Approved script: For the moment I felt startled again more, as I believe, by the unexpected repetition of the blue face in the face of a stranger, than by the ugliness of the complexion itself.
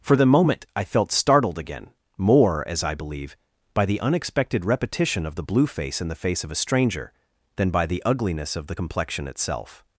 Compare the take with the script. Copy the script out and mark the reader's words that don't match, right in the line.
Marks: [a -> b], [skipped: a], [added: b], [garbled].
For the moment I felt startled again more, as I believe, by the unexpected repetition of the blue face in the face of a stranger, than by the ugliness of the complexion itself.